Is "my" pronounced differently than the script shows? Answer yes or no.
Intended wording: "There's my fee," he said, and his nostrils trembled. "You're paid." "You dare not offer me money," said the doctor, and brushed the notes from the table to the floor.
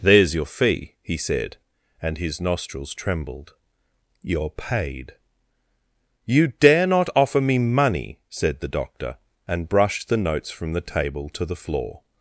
yes